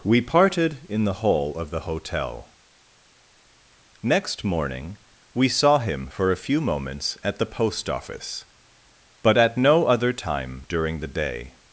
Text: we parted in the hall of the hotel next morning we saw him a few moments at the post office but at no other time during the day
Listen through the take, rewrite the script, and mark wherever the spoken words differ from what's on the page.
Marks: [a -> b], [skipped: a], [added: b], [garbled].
we parted in the hall of the hotel next morning we saw him [added: for] a few moments at the post office but at no other time during the day